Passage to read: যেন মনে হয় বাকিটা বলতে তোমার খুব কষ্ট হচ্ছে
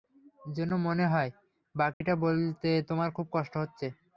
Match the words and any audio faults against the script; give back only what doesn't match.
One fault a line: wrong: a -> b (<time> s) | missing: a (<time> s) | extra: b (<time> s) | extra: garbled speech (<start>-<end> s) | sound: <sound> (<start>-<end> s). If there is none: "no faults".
sound: dropout (1.9-2.0 s)